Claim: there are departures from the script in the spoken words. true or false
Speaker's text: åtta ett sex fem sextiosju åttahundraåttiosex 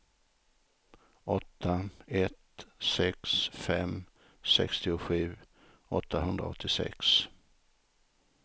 false